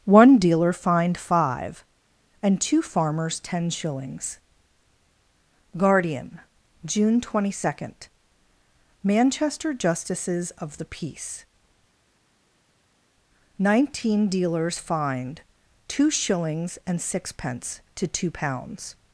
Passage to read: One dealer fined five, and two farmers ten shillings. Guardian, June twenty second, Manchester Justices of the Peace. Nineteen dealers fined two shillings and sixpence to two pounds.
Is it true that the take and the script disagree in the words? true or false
false